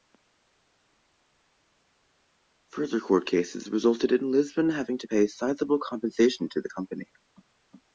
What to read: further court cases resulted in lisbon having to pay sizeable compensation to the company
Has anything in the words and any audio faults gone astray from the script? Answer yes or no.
no